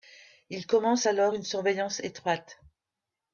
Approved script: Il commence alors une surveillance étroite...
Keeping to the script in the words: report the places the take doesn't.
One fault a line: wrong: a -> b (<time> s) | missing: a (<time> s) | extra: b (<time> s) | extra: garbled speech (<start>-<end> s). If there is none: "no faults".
no faults